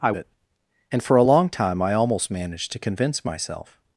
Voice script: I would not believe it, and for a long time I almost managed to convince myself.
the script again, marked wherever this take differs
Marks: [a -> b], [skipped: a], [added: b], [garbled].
I [skipped: would not believe] it, and for a long time I almost managed to convince myself.